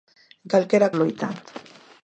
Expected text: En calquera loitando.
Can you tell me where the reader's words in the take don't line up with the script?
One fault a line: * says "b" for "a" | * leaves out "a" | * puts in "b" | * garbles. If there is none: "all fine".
all fine